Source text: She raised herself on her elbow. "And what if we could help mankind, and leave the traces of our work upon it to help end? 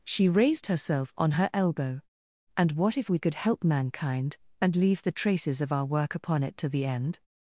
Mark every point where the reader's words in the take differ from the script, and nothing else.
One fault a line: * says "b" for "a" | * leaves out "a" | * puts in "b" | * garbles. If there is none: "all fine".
* says "the" for "help"